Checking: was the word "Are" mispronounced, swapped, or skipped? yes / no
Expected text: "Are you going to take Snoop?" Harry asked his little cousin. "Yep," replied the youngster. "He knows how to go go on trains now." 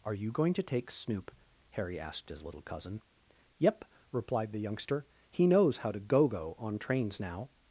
no